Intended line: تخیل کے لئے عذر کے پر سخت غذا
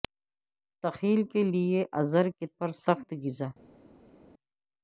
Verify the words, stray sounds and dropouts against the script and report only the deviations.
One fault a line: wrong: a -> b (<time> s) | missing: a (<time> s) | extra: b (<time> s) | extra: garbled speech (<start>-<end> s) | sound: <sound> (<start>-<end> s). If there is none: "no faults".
no faults